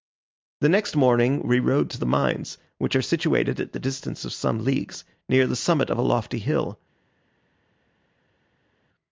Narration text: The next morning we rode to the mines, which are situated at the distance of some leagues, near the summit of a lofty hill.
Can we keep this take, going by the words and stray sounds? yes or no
yes